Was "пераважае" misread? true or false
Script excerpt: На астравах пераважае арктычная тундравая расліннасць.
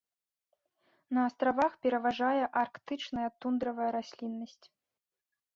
false